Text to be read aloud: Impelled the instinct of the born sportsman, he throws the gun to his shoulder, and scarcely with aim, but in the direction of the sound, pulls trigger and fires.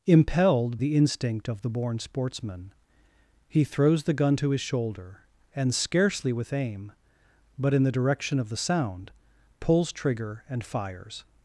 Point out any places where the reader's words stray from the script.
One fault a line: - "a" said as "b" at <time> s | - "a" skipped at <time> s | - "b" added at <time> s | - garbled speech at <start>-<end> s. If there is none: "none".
none